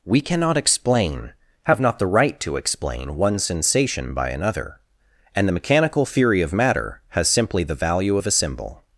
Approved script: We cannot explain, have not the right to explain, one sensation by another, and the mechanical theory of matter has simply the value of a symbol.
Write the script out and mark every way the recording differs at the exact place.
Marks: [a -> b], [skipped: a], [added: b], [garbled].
We cannot explain, have not the right to explain, one sensation by another, and the mechanical theory of matter has simply the value of a symbol.